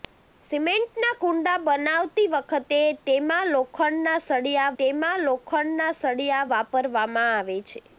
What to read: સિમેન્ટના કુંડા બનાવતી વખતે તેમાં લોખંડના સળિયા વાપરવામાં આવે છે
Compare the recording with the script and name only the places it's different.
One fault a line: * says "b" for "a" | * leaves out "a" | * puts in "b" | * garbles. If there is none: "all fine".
* puts in "તેમાં લોખંડના સળિયા"